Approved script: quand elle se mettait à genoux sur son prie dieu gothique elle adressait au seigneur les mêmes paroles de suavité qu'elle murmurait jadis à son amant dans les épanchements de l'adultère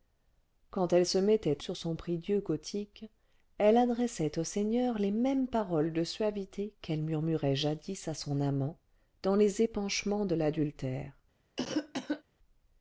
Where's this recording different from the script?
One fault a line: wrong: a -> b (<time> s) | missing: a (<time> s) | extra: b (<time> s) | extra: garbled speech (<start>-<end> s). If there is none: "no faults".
missing: à genoux (1.6 s)